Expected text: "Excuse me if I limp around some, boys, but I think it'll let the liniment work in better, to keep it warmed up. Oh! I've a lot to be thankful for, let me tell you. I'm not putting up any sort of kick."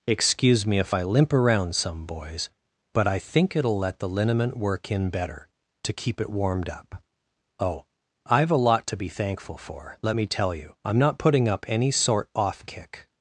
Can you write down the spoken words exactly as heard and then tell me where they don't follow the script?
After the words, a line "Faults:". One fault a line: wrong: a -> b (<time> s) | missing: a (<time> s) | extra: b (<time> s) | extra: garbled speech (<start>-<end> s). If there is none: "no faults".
"Excuse me if I limp around some, boys, but I think it'll let the liniment work in better, to keep it warmed up. Oh! I've a lot to be thankful for, let me tell you. I'm not putting up any sort off kick."
Faults:
wrong: of -> off (12.3 s)